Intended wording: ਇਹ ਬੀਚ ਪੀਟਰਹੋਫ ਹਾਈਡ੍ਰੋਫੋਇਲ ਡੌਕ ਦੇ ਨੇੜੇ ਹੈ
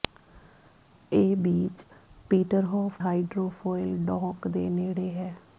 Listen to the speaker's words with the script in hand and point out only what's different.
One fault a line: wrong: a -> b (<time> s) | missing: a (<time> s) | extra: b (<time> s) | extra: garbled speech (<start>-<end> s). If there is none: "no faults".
no faults